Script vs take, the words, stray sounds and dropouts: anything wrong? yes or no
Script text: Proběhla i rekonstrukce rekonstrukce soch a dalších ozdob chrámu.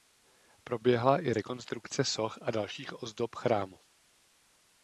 yes